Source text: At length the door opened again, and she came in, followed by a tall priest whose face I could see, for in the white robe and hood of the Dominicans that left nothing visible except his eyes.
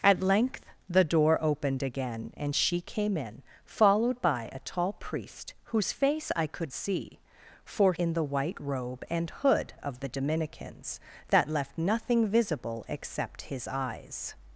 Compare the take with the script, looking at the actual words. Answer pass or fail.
pass